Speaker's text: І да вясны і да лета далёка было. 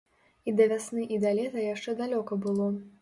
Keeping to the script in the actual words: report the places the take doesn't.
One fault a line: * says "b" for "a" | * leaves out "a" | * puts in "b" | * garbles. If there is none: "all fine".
* puts in "яшчэ"